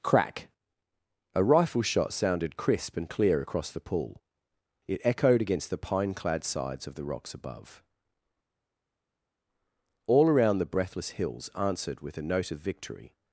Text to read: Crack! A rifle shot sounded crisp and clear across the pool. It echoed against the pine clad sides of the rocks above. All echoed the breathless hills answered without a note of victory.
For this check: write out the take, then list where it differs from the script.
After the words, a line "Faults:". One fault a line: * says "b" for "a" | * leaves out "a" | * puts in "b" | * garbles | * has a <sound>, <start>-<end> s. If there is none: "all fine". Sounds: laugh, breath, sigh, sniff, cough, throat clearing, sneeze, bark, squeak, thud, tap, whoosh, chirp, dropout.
Crack! A rifle shot sounded crisp and clear across the pool. It echoed against the pine clad sides of the rocks above. All around the breathless hills answered with a note of victory.
Faults:
* says "around" for "echoed"
* says "with" for "without"